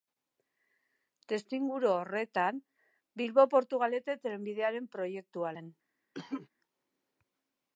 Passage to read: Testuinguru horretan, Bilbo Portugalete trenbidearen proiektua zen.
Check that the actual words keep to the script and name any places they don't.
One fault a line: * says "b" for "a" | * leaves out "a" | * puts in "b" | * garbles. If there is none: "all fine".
all fine